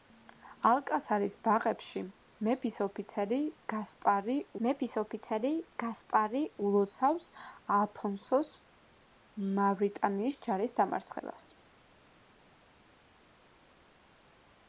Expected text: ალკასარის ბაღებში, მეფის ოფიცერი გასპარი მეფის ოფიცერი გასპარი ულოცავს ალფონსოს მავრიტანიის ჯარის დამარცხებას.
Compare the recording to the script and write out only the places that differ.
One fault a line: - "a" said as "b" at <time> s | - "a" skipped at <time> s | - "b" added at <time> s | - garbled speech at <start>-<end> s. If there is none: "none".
none